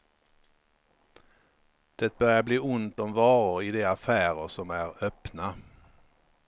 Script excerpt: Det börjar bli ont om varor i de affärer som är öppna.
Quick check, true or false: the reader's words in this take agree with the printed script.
true